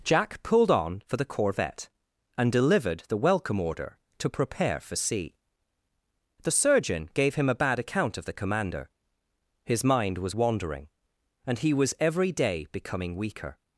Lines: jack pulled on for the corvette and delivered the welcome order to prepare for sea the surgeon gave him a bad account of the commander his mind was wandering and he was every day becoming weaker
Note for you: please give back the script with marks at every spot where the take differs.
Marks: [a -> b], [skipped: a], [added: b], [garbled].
jack pulled on for the corvette and delivered the welcome order to prepare for sea the surgeon gave him a bad account of the commander his mind was wandering and he was every day becoming weaker